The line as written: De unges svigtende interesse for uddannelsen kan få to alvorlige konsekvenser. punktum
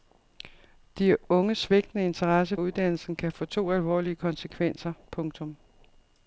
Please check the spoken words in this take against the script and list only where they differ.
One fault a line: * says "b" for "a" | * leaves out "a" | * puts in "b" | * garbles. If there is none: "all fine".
* leaves out "for"